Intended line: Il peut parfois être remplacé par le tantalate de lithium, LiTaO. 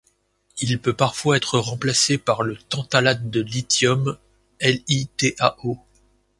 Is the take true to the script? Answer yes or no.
yes